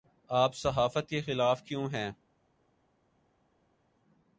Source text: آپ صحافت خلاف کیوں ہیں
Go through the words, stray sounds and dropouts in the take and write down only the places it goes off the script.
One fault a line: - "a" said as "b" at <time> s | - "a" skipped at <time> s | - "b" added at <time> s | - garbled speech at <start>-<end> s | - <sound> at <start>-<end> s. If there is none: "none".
- "کے" added at 1.1 s